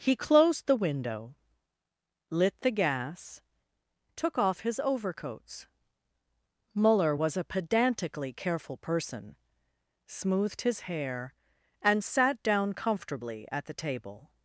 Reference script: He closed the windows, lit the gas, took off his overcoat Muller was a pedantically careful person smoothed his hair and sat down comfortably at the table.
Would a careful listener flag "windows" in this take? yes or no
yes